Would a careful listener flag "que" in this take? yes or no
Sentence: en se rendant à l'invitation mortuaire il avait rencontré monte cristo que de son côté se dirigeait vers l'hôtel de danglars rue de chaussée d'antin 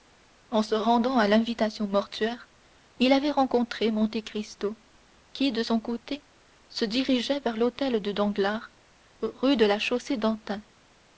yes